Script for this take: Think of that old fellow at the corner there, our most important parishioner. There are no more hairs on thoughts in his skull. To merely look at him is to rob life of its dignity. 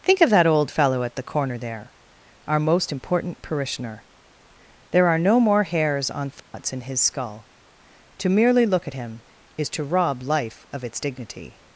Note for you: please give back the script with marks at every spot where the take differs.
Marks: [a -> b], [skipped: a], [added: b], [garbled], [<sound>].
Think of that old fellow at the corner there, our most important parishioner. There are no more hairs on thoughts [dropout] in his skull. To merely look at him is to rob life of its dignity.